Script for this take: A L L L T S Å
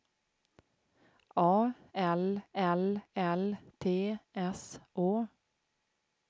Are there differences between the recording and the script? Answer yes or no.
no